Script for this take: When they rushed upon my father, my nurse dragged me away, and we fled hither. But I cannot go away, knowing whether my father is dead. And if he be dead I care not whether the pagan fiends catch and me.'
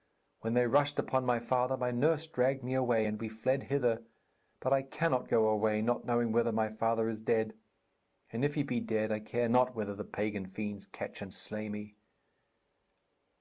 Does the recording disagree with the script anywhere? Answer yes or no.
yes